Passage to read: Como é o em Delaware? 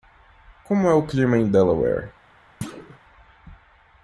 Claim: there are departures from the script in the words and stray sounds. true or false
true